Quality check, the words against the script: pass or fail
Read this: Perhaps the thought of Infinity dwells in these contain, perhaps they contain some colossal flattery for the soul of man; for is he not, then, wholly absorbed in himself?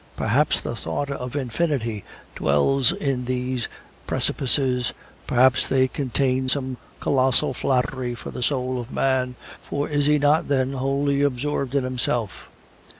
fail